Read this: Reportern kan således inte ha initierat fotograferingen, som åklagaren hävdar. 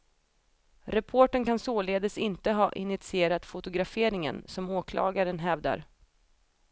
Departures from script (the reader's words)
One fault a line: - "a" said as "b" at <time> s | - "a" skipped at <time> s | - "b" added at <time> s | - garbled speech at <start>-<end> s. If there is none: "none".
none